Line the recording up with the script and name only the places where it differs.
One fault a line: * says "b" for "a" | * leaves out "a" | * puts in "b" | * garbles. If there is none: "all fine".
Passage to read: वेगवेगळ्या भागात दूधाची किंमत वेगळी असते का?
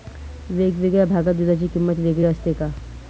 all fine